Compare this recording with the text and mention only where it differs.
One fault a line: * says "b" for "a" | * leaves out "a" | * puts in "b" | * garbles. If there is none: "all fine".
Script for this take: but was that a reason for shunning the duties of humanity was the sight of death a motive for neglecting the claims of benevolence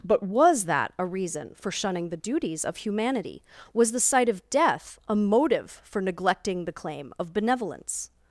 * says "claim" for "claims"